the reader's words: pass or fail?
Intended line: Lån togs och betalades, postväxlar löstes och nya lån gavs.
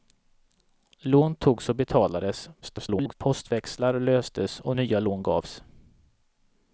fail